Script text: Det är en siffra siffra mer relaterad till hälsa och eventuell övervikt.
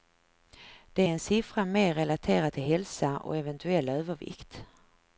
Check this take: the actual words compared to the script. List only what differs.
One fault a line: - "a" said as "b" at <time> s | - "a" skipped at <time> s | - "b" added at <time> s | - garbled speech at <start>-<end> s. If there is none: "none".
- "siffra" skipped at 1.6 s